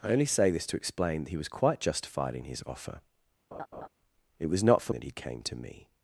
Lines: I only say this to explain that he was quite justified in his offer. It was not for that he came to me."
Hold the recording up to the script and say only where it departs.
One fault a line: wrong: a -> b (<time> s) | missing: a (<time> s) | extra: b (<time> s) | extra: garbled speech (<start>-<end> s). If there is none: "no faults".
no faults